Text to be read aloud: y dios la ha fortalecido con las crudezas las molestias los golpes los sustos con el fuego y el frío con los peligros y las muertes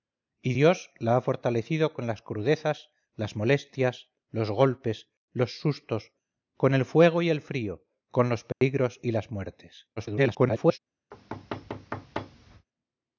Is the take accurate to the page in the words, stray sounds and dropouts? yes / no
no